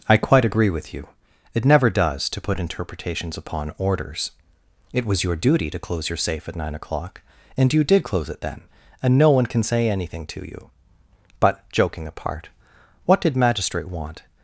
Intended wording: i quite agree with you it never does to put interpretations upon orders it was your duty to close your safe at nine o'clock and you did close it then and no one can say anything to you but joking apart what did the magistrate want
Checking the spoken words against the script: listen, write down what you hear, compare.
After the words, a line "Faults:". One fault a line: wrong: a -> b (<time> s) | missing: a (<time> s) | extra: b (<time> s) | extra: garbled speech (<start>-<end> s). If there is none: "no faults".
i quite agree with you it never does to put interpretations upon orders it was your duty to close your safe at nine o'clock and you did close it then and no one can say anything to you but joking apart what did magistrate want
Faults:
missing: the (13.3 s)